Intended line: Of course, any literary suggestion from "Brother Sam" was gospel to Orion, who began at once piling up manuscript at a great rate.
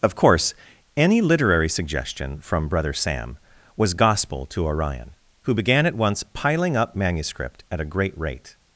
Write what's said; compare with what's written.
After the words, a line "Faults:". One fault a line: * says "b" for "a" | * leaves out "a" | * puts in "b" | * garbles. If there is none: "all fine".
Of course, any literary suggestion from "Brother Sam" was gospel to Orion, who began at once piling up manuscript at a great rate.
Faults:
all fine